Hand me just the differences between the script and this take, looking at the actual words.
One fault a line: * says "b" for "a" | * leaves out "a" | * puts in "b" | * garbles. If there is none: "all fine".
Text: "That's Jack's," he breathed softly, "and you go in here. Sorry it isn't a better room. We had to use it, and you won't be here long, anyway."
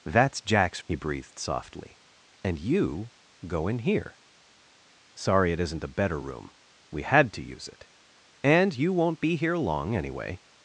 all fine